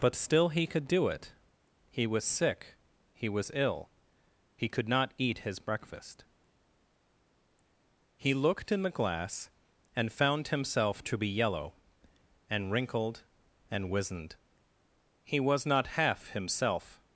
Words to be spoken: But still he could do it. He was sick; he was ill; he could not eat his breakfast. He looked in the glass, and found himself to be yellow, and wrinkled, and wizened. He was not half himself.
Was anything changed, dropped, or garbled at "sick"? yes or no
no